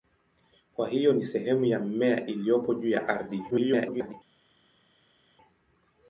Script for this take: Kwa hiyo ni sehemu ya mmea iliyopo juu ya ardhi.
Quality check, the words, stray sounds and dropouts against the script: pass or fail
fail